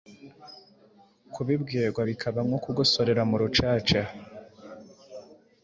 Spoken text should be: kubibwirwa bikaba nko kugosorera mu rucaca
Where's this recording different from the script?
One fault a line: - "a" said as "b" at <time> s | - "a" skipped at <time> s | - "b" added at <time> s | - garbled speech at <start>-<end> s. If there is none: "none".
none